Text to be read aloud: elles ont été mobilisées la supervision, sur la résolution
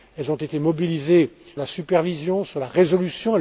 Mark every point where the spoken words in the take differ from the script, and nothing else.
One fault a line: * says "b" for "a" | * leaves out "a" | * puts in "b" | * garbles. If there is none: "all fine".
all fine